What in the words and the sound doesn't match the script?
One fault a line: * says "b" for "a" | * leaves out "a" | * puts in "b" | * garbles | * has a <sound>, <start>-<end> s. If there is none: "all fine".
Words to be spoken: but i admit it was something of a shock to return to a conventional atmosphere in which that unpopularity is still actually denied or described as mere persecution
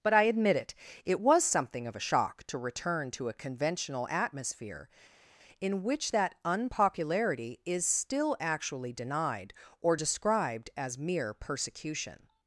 * puts in "it"